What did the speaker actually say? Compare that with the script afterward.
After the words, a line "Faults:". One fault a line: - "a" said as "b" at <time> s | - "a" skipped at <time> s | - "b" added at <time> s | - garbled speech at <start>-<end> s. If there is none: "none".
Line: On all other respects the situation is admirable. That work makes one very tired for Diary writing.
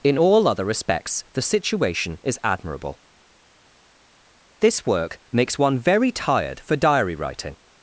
In all other respects the situation is admirable. This work makes one very tired for Diary writing.
Faults:
- "On" said as "In" at 0.0 s
- "That" said as "This" at 4.6 s